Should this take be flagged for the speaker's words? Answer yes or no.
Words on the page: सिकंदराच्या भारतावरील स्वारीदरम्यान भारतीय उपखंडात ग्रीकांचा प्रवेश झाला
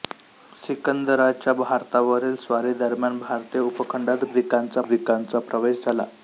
yes